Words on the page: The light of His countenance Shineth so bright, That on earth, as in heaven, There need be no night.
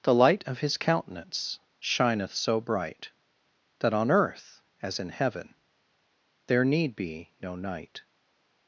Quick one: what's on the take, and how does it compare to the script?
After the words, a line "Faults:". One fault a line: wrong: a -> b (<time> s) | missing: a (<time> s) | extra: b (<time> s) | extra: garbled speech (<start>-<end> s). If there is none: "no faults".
The light of His countenance Shineth so bright, That on earth, as in heaven, There need be no night.
Faults:
no faults